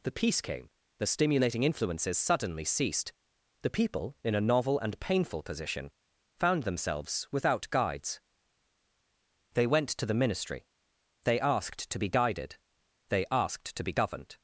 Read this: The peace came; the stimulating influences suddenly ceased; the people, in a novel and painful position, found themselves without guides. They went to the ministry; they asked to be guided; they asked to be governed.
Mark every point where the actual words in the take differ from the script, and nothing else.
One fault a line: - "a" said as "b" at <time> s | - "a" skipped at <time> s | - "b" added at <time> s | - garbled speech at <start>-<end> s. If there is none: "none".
none